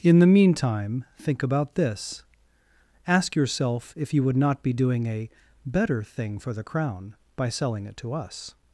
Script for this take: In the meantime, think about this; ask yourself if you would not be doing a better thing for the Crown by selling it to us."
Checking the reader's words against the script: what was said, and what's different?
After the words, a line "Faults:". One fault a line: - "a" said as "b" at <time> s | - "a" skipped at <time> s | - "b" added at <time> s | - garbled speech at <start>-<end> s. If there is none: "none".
In the meantime, think about this; ask yourself if you would not be doing a better thing for the Crown by selling it to us."
Faults:
none